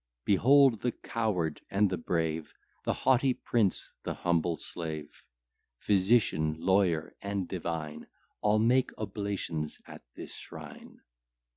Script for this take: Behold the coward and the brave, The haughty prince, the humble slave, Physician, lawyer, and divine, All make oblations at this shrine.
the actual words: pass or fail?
pass